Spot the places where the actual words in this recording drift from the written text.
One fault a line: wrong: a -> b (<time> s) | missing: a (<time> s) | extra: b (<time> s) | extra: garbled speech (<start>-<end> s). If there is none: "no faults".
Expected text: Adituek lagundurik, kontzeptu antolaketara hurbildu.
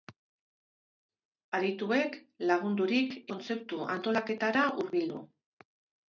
no faults